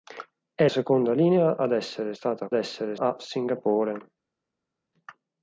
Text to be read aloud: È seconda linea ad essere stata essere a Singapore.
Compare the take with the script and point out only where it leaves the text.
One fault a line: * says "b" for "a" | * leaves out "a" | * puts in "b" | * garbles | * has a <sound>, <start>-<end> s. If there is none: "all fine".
all fine